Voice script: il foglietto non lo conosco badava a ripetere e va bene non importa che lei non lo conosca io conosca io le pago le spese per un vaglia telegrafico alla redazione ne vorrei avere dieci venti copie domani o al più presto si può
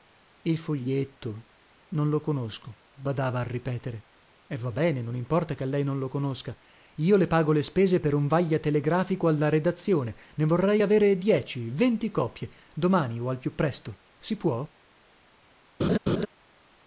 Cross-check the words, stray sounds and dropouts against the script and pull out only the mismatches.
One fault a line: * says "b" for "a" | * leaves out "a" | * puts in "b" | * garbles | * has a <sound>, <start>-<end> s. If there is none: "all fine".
* leaves out "conosca io"
* has a laugh, 15.8-16.3 s